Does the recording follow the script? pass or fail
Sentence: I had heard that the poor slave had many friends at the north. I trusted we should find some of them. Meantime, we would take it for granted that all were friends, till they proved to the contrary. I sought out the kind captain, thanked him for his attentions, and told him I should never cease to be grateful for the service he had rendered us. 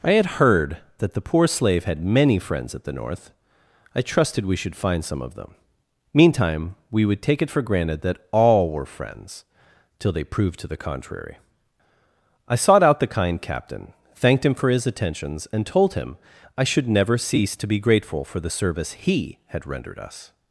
pass